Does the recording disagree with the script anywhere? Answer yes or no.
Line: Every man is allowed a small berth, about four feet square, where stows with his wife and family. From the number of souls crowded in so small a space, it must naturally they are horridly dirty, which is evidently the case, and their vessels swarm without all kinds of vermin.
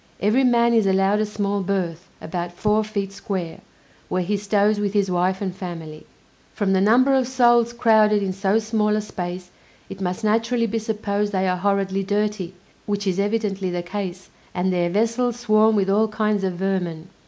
yes